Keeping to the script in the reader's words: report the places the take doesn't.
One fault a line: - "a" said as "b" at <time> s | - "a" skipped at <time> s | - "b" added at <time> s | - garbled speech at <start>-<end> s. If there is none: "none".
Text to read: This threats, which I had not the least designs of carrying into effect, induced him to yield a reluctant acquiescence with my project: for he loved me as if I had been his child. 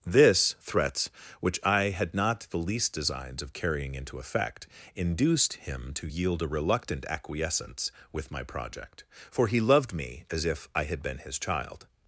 none